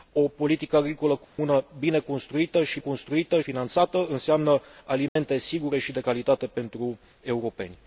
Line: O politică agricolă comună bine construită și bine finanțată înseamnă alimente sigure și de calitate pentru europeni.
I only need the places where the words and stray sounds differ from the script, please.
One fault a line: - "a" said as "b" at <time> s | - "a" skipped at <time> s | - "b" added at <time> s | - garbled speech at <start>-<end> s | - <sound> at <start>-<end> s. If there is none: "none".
- dropout at 1.2-1.4 s
- "bine" said as "construită" at 2.8 s
- dropout at 5.1-5.2 s